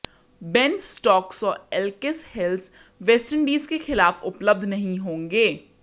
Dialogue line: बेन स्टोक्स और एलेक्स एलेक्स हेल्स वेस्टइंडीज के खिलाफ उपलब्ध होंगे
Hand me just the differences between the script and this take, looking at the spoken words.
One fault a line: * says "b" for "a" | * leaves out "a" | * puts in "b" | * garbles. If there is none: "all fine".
* leaves out "एलेक्स"
* puts in "नहीं"